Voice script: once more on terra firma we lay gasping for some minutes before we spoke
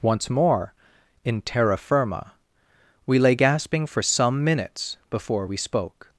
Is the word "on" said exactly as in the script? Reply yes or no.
no